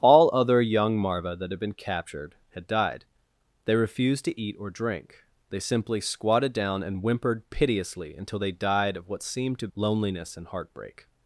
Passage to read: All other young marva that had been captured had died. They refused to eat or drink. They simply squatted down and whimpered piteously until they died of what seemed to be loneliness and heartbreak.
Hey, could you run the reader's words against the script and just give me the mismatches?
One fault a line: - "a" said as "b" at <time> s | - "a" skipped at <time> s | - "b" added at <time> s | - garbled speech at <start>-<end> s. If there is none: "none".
- "be" skipped at 9.7 s